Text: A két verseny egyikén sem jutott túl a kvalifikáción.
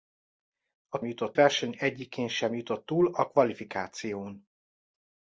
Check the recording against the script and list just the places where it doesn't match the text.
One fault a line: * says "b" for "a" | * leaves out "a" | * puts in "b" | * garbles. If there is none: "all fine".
* says "jutott" for "két"